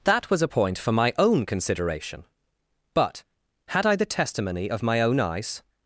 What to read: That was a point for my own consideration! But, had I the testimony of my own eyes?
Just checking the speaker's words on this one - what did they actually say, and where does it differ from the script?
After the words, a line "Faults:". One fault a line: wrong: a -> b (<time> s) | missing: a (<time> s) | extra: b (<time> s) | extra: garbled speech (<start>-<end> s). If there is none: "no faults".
That was a point for my own consideration! But, had I the testimony of my own eyes?
Faults:
no faults